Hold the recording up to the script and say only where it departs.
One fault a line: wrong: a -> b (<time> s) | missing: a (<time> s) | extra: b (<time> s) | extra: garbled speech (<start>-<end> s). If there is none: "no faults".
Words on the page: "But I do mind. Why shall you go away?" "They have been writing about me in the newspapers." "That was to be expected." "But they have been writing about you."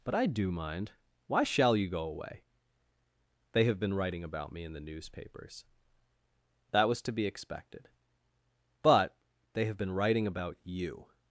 no faults